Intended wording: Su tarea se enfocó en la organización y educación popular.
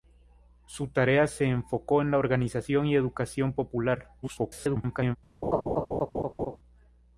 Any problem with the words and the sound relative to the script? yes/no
yes